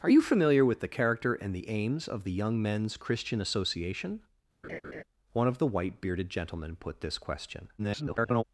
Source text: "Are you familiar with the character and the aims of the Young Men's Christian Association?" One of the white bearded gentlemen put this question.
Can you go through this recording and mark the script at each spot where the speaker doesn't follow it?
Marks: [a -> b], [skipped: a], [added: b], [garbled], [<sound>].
"Are you familiar with the character and the aims of the Young Men's Christian Association?" [laugh] One of the white bearded gentlemen put this question. [garbled]